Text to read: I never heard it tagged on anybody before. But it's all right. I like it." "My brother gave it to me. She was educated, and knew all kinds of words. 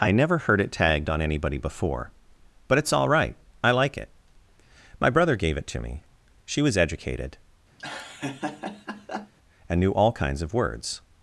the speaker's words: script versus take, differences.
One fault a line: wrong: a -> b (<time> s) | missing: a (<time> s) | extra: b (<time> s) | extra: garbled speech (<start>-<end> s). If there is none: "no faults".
no faults